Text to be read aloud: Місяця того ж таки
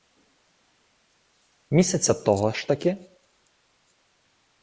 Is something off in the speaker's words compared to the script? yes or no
no